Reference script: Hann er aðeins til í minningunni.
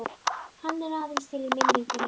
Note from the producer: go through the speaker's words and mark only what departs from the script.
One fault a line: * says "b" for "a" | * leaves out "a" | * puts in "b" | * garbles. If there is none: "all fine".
all fine